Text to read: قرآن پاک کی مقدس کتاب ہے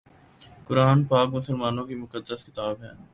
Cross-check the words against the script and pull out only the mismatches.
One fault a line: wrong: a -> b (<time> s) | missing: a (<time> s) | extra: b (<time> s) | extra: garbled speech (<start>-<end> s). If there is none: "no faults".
extra: مسلمانوں (1.3 s)